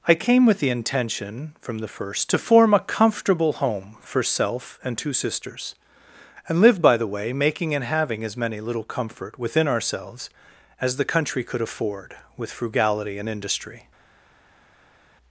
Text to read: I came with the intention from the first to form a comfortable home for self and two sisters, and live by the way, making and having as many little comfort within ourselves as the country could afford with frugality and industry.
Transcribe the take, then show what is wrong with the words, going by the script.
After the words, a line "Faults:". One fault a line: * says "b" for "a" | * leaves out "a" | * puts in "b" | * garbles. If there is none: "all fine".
I came with the intention from the first to form a comfortable home for self and two sisters, and live by the way, making and having as many little comfort within ourselves as the country could afford with frugality and industry.
Faults:
all fine